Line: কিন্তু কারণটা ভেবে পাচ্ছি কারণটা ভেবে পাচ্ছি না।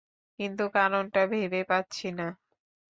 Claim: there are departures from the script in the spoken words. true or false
true